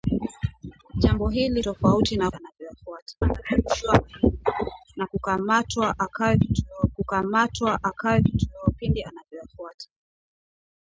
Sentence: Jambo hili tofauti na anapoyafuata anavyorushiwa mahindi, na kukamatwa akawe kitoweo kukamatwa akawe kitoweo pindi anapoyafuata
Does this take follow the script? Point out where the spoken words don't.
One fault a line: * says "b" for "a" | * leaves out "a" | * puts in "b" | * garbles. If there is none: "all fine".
all fine